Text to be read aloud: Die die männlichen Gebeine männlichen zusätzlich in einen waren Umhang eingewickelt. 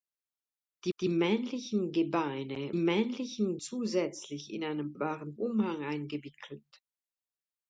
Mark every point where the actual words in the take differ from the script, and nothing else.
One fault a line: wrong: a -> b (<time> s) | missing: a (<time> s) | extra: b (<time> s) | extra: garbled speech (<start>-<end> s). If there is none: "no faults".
no faults